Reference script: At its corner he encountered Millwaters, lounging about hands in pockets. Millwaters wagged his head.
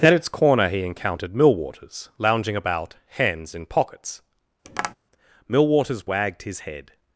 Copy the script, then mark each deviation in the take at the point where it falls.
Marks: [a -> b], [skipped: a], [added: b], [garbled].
At its corner he encountered Millwaters, lounging about hands in pockets. Millwaters wagged his head.